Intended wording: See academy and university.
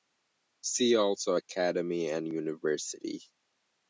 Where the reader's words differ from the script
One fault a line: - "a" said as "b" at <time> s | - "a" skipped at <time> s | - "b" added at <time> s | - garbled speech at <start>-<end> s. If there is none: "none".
- "also" added at 0.9 s